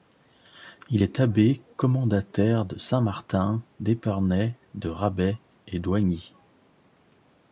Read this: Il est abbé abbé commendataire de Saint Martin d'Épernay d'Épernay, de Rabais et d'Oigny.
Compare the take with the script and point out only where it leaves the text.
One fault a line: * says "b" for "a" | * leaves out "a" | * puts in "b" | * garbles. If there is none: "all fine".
* leaves out "abbé"
* leaves out "d'Épernay"